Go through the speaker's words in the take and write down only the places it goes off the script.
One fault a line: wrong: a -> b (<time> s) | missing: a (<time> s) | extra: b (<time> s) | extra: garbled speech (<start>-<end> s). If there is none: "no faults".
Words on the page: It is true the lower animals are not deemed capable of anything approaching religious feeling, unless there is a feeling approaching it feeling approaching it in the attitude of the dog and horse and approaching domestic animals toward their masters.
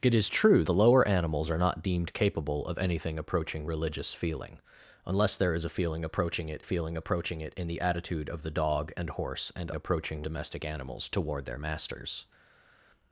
no faults